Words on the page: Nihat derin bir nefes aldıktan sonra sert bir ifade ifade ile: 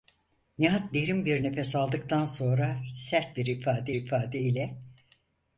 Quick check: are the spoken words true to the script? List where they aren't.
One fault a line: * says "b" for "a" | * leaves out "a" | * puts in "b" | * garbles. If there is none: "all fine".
all fine